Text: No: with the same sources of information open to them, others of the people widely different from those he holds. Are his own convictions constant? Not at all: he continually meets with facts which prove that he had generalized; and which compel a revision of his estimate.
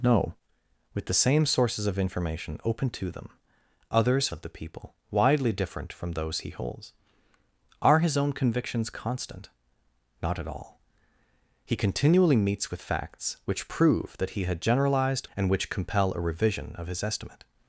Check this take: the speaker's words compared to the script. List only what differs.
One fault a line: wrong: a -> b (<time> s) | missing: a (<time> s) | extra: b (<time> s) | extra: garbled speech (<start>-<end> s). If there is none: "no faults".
no faults